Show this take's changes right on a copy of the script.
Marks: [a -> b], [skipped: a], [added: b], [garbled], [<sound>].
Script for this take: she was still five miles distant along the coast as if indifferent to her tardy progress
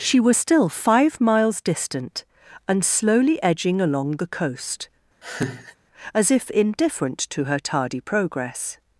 she was still five miles distant [added: and slowly edging] along the coast [laugh] as if indifferent to her tardy progress